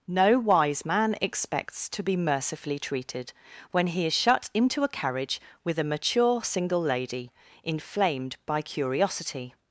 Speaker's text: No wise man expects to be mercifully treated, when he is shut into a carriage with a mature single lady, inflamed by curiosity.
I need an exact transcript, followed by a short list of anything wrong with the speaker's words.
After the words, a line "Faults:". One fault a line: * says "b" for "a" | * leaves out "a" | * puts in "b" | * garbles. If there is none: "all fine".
No wise man expects to be mercifully treated, when he is shut into a carriage with a mature single lady, inflamed by curiosity.
Faults:
all fine